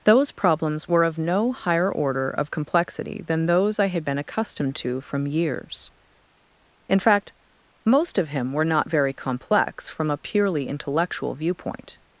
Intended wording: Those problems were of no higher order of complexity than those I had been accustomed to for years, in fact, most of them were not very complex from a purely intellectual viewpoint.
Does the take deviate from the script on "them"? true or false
true